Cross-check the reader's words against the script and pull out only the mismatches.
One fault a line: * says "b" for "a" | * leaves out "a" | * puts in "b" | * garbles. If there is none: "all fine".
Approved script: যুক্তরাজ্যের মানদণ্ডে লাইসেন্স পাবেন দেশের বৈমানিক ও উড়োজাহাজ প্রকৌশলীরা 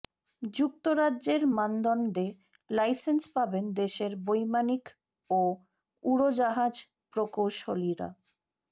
all fine